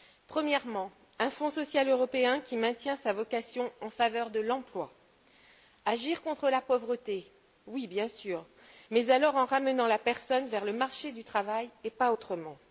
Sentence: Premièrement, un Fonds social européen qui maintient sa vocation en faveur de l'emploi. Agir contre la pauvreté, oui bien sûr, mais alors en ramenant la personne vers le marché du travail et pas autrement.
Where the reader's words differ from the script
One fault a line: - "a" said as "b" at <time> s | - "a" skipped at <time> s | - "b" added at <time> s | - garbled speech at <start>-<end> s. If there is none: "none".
none